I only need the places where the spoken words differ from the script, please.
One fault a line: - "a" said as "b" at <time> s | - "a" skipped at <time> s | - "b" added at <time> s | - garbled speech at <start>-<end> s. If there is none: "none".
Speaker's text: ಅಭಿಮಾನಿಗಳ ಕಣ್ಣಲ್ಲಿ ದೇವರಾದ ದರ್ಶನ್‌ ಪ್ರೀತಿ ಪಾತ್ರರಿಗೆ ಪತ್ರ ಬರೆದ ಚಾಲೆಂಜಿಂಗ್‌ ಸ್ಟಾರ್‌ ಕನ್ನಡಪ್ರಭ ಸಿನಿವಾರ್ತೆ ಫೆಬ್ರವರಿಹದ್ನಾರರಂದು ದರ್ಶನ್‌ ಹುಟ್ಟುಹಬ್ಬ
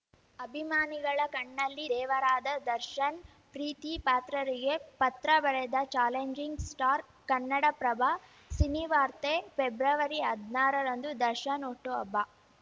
none